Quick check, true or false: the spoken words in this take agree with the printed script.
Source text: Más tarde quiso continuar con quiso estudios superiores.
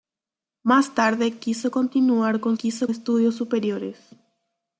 true